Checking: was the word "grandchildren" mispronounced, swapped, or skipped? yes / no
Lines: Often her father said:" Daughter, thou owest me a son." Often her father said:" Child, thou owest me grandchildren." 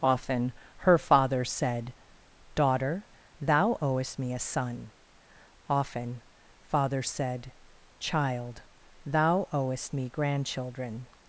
no